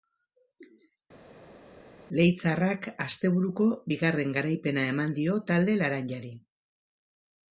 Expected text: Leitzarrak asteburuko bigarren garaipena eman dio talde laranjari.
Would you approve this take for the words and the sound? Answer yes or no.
yes